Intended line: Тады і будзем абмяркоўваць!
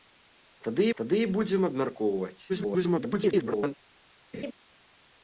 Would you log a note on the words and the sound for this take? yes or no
yes